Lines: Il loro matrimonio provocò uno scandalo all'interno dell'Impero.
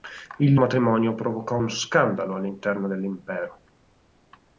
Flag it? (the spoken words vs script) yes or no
yes